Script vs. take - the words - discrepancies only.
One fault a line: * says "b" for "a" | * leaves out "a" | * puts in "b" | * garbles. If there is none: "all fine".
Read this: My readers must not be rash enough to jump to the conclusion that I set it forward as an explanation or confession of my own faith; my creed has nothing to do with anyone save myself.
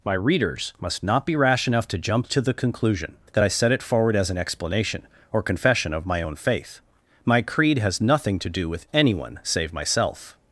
all fine